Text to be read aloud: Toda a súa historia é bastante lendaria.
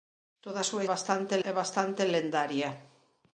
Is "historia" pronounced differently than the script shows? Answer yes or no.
yes